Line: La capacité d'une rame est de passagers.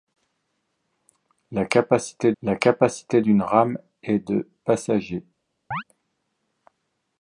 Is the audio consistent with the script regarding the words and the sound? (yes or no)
no